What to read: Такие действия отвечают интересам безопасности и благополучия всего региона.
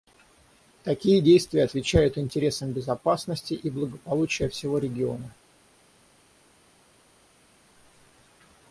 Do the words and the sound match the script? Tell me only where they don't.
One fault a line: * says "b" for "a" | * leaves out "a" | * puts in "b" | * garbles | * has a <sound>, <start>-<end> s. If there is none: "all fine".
all fine